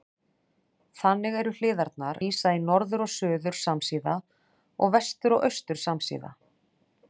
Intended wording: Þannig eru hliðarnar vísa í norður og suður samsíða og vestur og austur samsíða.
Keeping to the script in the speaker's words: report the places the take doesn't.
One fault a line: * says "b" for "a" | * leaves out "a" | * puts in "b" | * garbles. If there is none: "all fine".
all fine